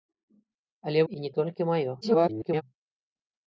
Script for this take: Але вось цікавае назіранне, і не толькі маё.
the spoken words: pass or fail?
fail